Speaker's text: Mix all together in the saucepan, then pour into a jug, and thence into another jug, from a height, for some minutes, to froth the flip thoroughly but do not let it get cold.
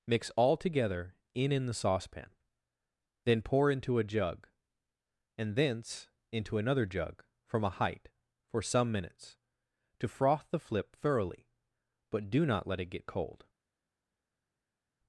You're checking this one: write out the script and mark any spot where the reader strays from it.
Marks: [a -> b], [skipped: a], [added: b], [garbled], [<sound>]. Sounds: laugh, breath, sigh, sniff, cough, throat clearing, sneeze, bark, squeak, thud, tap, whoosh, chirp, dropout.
Mix all together in [added: in] the saucepan, then pour into a jug, and thence into another jug, from a height, for some minutes, to froth the flip thoroughly but do not let it get cold.